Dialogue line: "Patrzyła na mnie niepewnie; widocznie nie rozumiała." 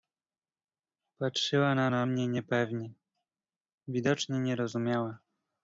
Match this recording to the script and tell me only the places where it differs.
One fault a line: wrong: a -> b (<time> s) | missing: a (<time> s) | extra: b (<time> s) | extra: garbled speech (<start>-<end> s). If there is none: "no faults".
extra: na (1.9 s)